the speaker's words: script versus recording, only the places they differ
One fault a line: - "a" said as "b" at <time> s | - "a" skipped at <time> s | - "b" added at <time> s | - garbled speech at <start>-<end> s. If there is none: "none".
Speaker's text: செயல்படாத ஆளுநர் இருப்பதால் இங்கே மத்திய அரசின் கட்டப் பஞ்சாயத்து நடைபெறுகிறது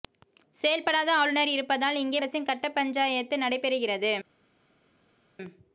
- "மத்திய" skipped at 2.2 s